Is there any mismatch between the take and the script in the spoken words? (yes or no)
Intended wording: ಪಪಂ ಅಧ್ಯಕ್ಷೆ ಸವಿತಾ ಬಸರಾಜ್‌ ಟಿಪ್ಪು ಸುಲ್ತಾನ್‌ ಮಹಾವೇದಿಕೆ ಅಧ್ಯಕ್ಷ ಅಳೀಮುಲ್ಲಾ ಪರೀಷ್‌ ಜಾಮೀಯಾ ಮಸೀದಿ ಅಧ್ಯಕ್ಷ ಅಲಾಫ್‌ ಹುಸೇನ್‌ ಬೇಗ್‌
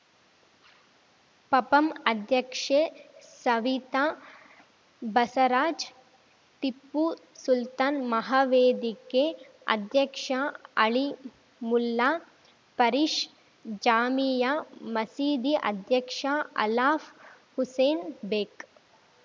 no